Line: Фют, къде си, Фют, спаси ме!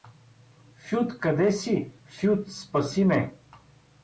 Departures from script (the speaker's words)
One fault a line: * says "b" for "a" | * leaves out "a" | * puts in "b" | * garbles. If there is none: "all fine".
all fine